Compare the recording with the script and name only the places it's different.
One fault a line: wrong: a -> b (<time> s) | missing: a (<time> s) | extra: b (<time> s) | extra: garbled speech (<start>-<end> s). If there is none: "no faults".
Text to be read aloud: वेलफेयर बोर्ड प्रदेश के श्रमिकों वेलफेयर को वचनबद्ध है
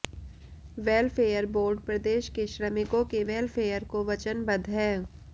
extra: के (3.1 s)